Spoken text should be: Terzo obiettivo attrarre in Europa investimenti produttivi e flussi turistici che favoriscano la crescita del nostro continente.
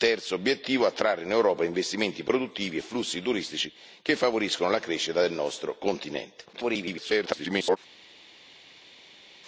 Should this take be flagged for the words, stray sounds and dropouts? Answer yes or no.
yes